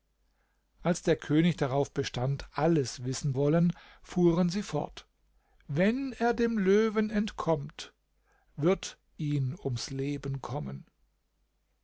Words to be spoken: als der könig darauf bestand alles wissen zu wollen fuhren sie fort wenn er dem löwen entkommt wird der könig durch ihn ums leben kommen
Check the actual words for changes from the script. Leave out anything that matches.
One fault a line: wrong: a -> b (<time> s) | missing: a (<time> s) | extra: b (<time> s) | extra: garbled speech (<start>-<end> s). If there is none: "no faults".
missing: zu (3.4 s)
missing: der könig durch (9.0 s)